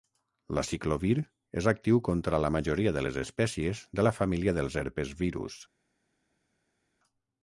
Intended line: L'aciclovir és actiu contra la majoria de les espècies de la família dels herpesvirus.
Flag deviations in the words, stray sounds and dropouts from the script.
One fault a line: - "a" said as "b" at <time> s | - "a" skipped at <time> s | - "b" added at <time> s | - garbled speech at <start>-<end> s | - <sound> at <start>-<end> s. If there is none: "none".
none